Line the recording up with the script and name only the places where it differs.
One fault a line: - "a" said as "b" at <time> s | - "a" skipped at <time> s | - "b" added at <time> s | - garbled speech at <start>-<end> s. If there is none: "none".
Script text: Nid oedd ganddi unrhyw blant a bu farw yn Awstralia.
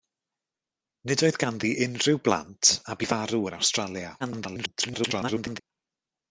- garbled speech at 4.2-5.6 s